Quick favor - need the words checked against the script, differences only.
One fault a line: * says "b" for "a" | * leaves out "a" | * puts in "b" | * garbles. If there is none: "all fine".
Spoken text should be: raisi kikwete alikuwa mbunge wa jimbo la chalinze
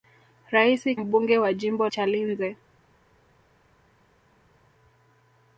* leaves out "kikwete alikuwa"
* leaves out "la"